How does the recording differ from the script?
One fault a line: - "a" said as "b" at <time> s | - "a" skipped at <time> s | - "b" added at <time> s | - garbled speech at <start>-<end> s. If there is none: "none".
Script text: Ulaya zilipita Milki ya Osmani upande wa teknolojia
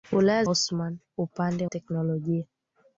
- "zilipita Milki ya" skipped at 0.4 s
- "wa" skipped at 1.7 s